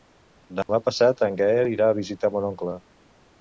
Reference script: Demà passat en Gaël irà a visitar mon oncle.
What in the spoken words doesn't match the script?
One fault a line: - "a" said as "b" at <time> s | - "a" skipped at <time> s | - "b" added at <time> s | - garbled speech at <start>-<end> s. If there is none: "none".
none